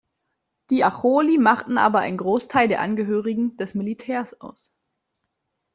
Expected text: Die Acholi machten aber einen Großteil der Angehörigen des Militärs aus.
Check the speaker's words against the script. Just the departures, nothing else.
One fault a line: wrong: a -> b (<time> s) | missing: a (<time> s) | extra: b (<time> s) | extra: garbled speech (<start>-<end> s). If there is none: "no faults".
no faults